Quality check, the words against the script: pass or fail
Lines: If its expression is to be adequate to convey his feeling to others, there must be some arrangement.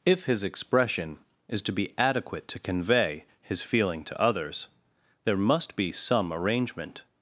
fail